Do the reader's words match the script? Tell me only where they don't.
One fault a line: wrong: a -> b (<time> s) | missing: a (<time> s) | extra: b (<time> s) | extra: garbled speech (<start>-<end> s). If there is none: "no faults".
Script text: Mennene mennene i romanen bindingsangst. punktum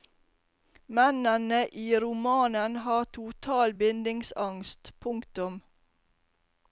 missing: mennene (1.7 s)
extra: har total (2.8 s)